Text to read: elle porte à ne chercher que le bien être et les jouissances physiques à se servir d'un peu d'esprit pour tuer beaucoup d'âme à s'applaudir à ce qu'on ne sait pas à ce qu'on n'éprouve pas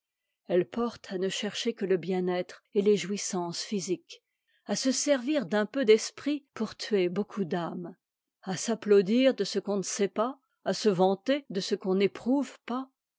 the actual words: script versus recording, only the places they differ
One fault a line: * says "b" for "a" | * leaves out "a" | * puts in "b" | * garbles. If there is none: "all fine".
* says "de" for "à"
* puts in "se vanter de"